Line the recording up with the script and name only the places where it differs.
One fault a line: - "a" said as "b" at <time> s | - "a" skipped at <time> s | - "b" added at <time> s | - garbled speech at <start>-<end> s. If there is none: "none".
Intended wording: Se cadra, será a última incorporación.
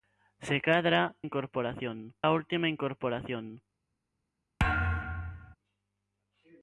- "será" said as "incorporación" at 1.2 s